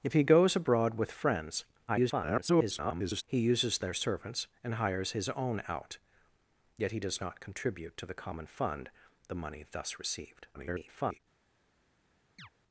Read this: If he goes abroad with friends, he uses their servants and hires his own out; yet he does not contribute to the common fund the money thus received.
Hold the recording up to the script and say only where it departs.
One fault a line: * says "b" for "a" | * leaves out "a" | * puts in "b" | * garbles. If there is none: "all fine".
* garbles
* garbles